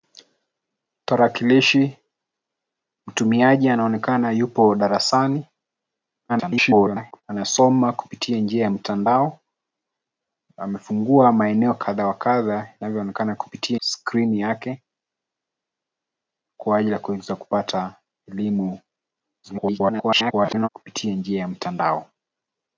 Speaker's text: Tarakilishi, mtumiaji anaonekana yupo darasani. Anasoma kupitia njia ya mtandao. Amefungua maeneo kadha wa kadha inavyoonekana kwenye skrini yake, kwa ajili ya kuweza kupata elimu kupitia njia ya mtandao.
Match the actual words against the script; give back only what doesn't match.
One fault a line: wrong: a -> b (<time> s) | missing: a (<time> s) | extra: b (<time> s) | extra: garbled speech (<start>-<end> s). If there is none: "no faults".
extra: garbled speech (6.3-7.2 s)
wrong: kwenye -> kupitia (13.3 s)
extra: garbled speech (19.4-20.7 s)